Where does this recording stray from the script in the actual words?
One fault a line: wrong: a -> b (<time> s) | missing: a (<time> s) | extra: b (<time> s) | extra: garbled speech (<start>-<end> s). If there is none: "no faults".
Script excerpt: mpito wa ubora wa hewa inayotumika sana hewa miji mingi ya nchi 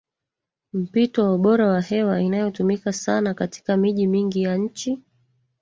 wrong: hewa -> katika (3.3 s)